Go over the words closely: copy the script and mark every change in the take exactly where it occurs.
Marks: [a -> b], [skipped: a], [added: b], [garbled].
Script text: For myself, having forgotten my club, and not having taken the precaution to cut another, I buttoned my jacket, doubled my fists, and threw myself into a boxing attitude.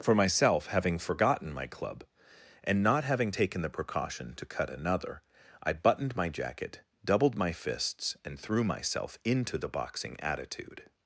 For myself, having forgotten my club, and not having taken the precaution to cut another, I buttoned my jacket, doubled my fists, and threw myself into [a -> the] boxing attitude.